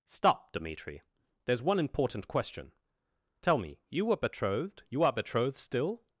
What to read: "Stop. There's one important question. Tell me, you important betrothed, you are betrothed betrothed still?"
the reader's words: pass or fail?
fail